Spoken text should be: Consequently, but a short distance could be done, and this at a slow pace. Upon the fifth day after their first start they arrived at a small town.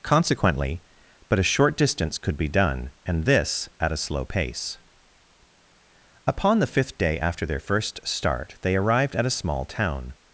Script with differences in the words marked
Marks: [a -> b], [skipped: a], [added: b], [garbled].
Consequently, but a short distance could be done, and this at a slow pace. Upon the fifth day after their first start they arrived at a small town.